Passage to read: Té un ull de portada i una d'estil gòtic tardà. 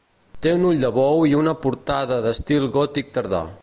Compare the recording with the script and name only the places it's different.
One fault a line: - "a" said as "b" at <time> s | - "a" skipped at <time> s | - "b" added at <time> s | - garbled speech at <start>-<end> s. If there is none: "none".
- "portada" said as "bou" at 0.9 s
- "portada" added at 1.7 s